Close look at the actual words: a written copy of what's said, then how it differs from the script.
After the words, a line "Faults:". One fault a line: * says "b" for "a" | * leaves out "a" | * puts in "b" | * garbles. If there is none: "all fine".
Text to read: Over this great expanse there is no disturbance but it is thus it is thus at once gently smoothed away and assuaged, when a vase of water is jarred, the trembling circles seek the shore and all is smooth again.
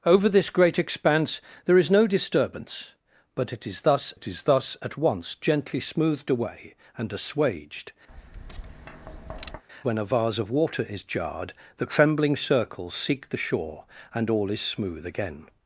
Over this great expanse there is no disturbance but it is thus it is thus at once gently smoothed away and assuaged, when a vase of water is jarred, the trembling circles seek the shore and all is smooth again.
Faults:
all fine